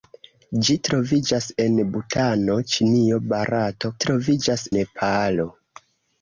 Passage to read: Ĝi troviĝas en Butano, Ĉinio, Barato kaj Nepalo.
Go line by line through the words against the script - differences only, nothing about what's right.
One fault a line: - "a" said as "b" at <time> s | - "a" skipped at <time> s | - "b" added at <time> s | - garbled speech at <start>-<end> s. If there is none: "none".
- "kaj" said as "troviĝas" at 4.0 s